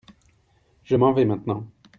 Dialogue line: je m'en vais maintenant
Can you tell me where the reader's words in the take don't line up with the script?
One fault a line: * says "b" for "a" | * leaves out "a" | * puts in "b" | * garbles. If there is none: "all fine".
all fine